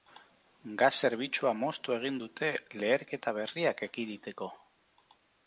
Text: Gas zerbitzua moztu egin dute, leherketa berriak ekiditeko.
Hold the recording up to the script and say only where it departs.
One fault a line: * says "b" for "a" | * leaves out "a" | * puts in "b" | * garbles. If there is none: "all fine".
all fine